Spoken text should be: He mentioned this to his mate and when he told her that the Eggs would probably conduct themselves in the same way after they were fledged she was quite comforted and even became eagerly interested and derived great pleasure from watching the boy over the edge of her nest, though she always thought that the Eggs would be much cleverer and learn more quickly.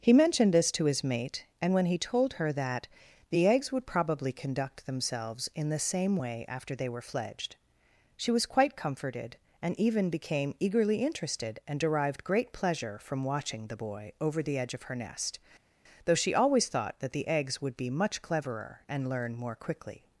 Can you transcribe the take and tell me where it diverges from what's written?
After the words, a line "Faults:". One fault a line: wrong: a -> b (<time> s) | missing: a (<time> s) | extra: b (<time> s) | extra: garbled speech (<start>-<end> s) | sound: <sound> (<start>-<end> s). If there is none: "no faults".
He mentioned this to his mate and when he told her that the Eggs would probably conduct themselves in the same way after they were fledged she was quite comforted and even became eagerly interested and derived great pleasure from watching the boy over the edge of her nest, though she always thought that the Eggs would be much cleverer and learn more quickly.
Faults:
no faults